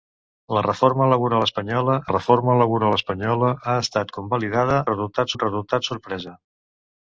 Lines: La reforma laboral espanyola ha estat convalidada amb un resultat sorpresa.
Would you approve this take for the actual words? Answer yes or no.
no